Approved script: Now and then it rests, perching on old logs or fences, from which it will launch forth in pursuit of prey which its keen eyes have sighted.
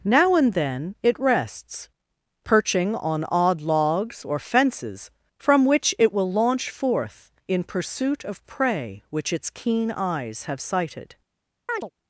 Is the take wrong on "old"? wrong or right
wrong